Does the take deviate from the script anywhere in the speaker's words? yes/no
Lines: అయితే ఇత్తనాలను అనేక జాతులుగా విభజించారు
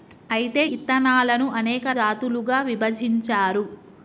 no